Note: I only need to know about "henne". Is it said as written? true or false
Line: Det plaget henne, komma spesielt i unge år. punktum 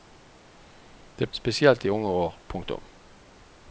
false